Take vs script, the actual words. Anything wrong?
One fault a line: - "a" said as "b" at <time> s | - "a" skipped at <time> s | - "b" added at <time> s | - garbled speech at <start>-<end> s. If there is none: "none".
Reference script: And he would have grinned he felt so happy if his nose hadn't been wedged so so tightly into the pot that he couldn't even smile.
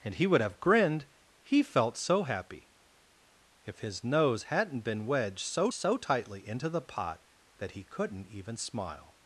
none